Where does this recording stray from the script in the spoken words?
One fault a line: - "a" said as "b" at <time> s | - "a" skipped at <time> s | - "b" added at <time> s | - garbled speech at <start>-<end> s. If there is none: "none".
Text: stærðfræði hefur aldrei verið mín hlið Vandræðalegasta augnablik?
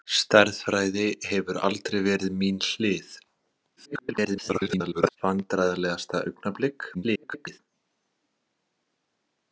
- garbled speech at 3.8-5.2 s
- garbled speech at 6.9-7.6 s